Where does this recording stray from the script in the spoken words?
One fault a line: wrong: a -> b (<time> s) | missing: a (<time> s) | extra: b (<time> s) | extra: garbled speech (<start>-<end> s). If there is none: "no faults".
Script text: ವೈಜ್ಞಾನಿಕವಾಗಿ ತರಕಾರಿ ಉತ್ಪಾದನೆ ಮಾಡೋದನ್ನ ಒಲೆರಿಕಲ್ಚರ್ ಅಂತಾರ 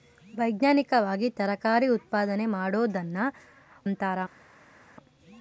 missing: ಒಲೆರಿಕಲ್ಚರ್ (3.2 s)